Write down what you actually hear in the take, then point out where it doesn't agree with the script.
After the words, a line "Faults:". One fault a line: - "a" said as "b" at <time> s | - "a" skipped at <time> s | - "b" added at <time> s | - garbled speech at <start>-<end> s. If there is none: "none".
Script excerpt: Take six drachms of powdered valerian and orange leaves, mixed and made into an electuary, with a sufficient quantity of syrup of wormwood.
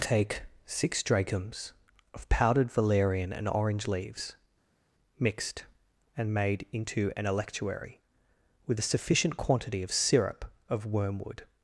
Take six drachms of powdered valerian and orange leaves, mixed and made into an electuary, with a sufficient quantity of syrup of wormwood.
Faults:
none